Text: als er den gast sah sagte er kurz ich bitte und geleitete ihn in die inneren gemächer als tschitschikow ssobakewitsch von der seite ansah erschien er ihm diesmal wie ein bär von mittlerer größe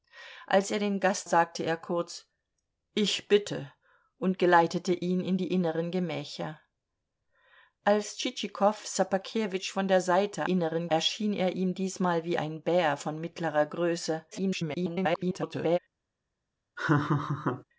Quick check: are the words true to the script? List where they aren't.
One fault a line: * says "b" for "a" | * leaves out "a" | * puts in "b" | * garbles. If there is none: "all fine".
* leaves out "sah"
* says "inneren" for "ansah"
* garbles